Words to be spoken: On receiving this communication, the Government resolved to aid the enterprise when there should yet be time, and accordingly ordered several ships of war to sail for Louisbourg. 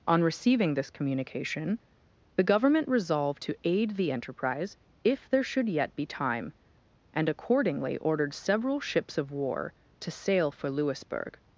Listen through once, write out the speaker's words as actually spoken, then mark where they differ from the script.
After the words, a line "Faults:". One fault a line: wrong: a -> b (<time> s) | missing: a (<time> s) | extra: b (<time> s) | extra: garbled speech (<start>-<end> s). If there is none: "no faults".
On receiving this communication, the Government resolved to aid the enterprise if there should yet be time, and accordingly ordered several ships of war to sail for Louisbourg.
Faults:
wrong: when -> if (5.0 s)